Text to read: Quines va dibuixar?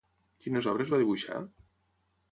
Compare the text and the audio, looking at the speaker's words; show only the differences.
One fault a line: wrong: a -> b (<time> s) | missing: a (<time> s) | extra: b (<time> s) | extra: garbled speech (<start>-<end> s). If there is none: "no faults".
extra: obres (0.7 s)